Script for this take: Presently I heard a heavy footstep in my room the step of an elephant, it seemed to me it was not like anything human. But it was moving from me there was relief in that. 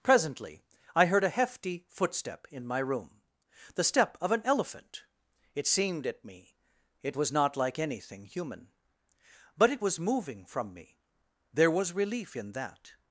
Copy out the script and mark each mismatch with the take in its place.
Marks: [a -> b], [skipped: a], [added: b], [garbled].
Presently I heard a [heavy -> hefty] footstep in my room the step of an elephant, it seemed [to -> at] me it was not like anything human. But it was moving from me there was relief in that.